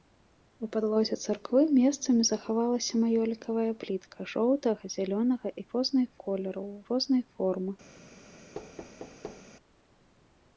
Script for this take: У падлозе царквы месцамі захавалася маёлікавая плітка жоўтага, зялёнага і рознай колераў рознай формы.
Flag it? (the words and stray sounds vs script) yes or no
yes